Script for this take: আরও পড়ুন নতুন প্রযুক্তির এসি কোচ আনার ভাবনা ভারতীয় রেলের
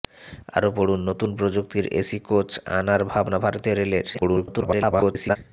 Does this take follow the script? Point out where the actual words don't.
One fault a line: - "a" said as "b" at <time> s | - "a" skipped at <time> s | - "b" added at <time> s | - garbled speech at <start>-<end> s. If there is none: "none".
- garbled speech at 4.1-5.4 s